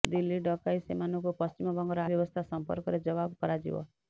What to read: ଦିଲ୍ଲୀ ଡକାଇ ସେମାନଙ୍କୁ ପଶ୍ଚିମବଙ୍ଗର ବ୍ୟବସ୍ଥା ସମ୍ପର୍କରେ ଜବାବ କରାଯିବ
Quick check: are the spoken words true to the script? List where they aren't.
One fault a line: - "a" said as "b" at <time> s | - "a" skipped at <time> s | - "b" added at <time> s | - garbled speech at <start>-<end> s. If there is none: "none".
none